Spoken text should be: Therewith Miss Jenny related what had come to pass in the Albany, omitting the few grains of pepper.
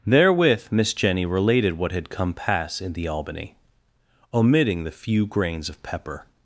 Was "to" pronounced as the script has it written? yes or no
no